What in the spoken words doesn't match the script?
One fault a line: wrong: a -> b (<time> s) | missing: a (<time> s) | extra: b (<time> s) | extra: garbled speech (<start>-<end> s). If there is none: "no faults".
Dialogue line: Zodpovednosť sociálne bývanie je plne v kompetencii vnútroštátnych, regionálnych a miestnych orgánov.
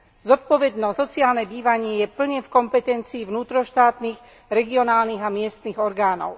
no faults